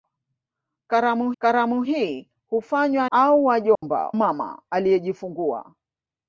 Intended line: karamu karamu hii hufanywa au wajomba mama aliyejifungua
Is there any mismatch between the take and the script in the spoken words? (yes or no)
no